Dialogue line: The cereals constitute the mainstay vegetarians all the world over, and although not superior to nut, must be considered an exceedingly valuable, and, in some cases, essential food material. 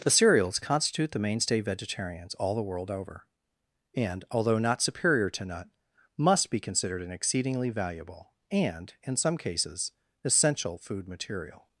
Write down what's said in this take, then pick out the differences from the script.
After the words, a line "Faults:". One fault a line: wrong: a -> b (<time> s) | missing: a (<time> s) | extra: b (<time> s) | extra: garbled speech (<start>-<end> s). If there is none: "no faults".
The cereals constitute the mainstay vegetarians all the world over, and although not superior to nut, must be considered an exceedingly valuable, and, in some cases, essential food material.
Faults:
no faults